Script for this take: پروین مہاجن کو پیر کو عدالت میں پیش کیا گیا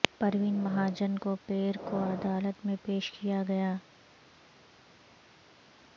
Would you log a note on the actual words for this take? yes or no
no